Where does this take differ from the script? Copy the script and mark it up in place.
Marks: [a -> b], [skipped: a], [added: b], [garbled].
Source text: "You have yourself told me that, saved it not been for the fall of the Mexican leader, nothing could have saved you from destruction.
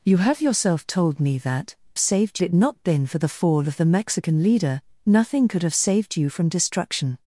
"You have yourself told me that, saved it not been for the fall of the Mexican leader, nothing could have saved you from destruction.